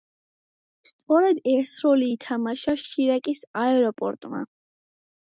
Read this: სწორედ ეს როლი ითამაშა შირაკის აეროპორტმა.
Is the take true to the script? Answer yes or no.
yes